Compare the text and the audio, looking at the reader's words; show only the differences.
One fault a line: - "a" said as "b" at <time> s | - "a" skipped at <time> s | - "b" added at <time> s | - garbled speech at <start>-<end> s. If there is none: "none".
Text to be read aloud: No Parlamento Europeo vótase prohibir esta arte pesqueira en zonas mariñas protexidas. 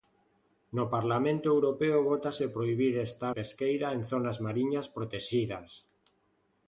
- "arte" skipped at 3.2 s